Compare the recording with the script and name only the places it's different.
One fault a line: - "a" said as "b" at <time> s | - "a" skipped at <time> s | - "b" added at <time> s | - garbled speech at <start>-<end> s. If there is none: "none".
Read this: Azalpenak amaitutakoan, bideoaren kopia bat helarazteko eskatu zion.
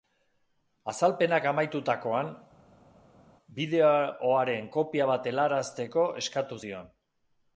none